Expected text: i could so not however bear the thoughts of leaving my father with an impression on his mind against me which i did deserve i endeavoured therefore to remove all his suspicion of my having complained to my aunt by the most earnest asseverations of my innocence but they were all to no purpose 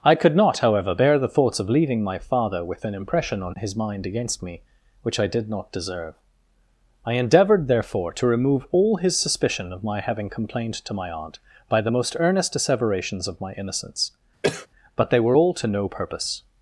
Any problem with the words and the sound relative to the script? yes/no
yes